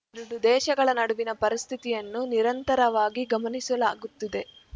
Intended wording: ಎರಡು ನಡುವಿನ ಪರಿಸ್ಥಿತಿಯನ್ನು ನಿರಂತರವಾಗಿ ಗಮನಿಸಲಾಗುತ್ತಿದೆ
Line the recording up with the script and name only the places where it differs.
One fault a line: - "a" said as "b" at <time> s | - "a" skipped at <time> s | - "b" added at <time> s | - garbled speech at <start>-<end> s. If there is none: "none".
- "ದೇಶಗಳ" added at 0.4 s